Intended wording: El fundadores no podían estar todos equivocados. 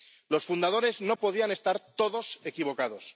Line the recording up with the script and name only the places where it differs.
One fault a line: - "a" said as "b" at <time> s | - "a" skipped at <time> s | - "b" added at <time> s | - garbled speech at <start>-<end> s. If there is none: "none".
- "El" said as "Los" at 0.3 s